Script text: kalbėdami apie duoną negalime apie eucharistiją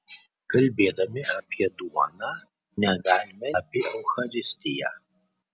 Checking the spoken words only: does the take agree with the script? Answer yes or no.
yes